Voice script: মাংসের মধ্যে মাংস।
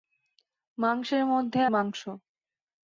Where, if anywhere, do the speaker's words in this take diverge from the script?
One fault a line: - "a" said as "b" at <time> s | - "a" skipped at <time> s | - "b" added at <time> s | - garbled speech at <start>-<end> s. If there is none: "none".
none